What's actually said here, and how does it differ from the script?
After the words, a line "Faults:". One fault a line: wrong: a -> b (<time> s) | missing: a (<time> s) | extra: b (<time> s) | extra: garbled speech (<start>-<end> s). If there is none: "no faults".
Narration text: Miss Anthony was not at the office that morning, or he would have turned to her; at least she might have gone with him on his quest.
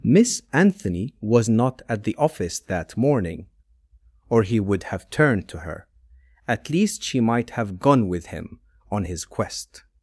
Miss Anthony was not at the office that morning, or he would have turned to her; at least she might have gone with him on his quest.
Faults:
no faults